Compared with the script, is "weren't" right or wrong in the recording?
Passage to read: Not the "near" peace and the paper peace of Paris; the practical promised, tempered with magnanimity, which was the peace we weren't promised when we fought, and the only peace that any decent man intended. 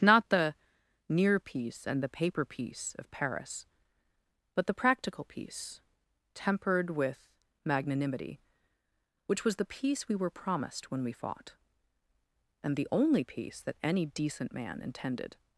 wrong